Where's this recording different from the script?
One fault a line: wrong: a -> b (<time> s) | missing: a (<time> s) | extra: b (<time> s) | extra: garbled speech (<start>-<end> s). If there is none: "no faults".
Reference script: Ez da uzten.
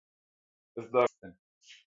no faults